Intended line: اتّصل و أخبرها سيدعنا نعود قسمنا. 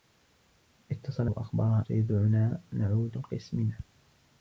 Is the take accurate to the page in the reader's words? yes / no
yes